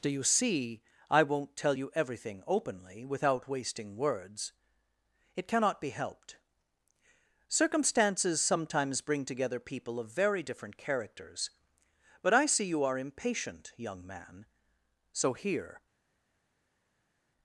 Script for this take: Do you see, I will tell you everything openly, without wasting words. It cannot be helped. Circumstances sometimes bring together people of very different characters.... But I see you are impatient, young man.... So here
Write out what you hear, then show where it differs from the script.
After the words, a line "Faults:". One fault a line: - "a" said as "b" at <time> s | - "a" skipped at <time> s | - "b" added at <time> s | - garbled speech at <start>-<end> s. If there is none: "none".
Do you see, I won't tell you everything openly, without wasting words. It cannot be helped. Circumstances sometimes bring together people of very different characters.... But I see you are impatient, young man.... So here
Faults:
- "will" said as "won't" at 1.2 s